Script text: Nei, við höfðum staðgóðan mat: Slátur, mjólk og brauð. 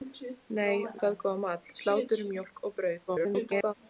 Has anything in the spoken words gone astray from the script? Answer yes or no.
yes